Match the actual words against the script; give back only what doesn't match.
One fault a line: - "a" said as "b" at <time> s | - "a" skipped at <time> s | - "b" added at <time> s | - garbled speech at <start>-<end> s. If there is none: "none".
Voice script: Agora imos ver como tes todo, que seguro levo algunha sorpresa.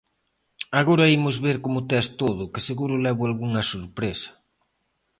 none